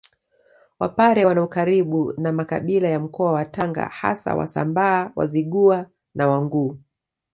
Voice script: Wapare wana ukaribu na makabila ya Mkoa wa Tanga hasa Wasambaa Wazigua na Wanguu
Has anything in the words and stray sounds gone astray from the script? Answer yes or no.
no